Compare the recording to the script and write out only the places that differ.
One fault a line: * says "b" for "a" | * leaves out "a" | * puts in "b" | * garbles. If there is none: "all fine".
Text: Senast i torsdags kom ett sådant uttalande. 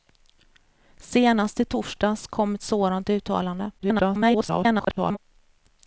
* garbles